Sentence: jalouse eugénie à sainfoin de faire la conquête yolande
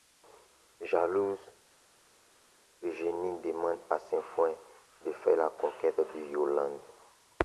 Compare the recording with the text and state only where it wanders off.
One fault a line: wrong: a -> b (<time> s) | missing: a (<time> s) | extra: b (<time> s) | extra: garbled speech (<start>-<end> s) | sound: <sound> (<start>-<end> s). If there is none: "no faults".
extra: demande (3.4 s)
extra: de (6.0 s)